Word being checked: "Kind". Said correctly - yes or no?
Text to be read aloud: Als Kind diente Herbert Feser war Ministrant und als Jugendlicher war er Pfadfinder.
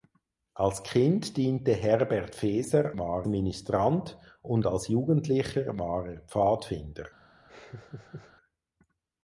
yes